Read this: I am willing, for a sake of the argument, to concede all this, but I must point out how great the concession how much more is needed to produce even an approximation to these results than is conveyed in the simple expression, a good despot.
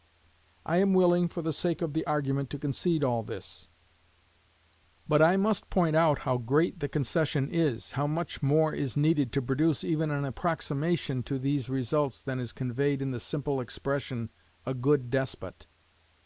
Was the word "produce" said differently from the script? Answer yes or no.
no